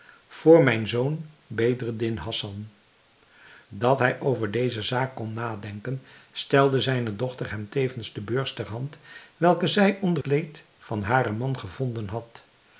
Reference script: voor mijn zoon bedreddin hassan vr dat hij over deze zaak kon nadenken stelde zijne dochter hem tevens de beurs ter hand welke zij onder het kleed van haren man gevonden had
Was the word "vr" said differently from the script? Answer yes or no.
yes